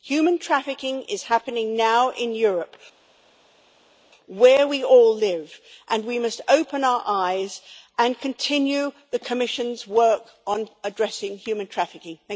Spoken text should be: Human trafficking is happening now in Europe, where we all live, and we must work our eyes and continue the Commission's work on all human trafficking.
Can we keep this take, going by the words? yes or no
no